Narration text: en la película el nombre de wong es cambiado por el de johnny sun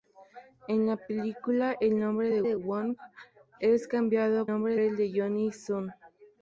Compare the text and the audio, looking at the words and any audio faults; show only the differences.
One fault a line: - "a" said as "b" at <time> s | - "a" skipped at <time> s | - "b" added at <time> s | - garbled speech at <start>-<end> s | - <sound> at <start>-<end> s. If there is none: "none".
- "de" added at 2.4 s
- "por" said as "nombre" at 4.5 s